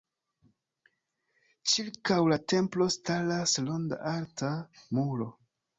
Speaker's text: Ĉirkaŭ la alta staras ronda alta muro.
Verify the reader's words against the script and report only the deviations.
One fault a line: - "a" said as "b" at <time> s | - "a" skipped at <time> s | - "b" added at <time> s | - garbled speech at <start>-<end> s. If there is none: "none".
- "alta" said as "templo" at 2.5 s